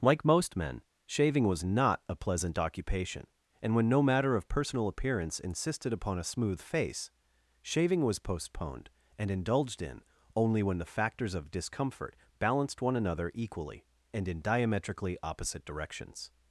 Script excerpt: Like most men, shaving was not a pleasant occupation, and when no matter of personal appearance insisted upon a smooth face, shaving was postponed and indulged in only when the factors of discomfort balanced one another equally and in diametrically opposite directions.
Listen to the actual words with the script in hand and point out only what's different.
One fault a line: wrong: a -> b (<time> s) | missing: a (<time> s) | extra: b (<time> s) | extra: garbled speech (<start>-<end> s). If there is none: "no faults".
no faults